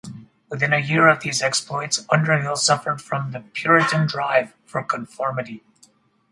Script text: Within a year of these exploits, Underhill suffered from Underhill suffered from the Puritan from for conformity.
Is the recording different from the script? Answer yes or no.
yes